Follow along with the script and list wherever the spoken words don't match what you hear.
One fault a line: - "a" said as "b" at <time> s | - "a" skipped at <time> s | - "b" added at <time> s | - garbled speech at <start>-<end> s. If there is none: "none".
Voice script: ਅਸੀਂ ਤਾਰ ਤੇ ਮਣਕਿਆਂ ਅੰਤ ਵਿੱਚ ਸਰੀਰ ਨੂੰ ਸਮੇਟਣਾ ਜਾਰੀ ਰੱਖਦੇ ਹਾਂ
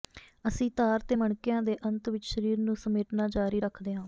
- "ਦੇ" added at 1.6 s